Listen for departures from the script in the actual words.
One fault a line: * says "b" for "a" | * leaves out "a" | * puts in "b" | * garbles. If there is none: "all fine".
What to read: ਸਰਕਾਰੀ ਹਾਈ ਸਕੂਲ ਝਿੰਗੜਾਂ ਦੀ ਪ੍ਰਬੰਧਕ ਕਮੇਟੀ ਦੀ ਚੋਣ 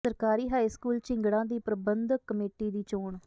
all fine